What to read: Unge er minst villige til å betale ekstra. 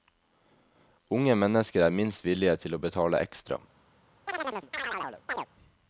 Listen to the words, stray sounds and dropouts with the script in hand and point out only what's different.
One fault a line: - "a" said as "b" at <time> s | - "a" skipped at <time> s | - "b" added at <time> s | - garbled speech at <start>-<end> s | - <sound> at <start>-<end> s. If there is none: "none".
- "mennesker" added at 1.4 s
- chirp at 4.3-5.5 s